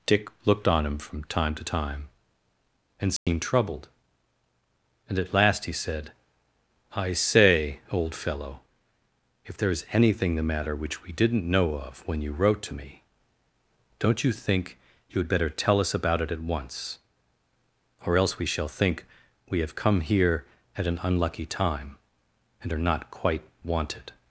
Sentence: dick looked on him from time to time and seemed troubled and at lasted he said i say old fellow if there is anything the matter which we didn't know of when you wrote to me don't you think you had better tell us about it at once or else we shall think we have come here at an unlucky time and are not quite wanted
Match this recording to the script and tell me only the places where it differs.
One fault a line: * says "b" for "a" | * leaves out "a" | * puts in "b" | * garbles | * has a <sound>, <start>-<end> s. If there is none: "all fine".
* has a dropout, 3.2-3.3 s
* says "last" for "lasted"